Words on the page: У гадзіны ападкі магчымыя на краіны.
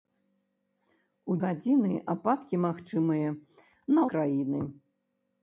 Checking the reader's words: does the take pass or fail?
pass